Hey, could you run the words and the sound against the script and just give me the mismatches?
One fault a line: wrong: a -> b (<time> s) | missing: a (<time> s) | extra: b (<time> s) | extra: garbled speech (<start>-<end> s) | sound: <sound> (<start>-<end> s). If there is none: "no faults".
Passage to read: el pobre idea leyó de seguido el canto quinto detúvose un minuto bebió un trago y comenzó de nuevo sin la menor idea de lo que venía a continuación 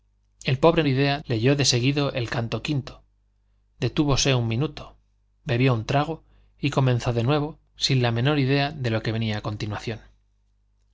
no faults